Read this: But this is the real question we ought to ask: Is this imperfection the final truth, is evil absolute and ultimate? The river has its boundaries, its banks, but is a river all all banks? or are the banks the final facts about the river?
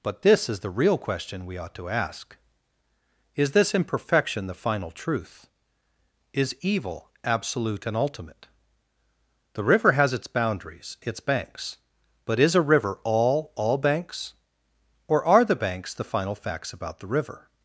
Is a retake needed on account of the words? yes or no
no